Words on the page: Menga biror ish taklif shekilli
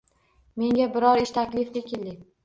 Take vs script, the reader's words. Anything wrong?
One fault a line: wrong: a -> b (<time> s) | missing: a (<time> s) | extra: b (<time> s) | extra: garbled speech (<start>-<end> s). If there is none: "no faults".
no faults